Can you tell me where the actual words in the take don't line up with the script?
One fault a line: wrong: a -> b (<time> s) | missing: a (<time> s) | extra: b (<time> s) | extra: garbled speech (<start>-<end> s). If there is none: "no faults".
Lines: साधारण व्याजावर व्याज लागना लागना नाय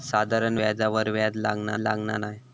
no faults